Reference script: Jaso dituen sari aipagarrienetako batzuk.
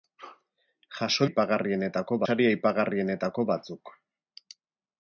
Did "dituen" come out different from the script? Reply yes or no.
yes